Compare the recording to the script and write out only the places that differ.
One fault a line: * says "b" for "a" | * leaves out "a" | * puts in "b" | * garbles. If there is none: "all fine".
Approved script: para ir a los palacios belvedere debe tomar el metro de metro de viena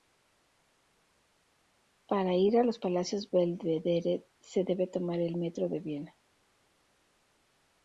* puts in "se"
* leaves out "metro de"